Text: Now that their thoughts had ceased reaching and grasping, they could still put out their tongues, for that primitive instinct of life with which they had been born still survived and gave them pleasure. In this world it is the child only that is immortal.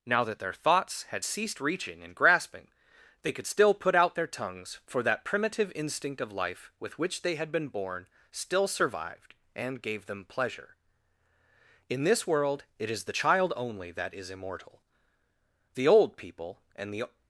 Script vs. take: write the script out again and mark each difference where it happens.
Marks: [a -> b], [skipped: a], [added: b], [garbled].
Now that their thoughts had ceased reaching and grasping, they could still put out their tongues, for that primitive instinct of life with which they had been born still survived and gave them pleasure. In this world it is the child only that is immortal. [added: The old people and the]